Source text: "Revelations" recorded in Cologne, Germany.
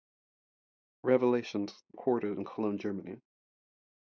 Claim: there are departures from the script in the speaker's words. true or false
false